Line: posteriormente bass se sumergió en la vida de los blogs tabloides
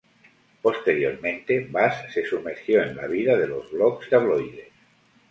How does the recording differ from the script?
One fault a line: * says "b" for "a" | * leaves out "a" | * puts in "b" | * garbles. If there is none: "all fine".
all fine